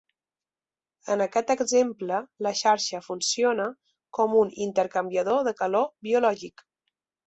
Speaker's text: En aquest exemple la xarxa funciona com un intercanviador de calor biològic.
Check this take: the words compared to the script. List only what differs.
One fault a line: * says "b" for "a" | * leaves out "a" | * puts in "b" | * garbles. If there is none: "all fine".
all fine